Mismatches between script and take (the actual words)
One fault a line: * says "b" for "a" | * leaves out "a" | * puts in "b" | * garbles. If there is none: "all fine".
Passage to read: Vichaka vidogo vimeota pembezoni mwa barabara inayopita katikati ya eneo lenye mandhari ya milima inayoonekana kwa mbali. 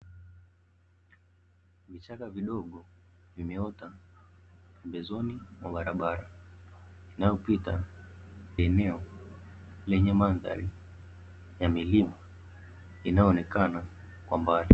* leaves out "katikati"